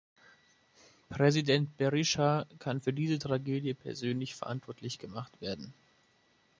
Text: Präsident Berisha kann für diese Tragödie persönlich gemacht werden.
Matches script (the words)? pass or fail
fail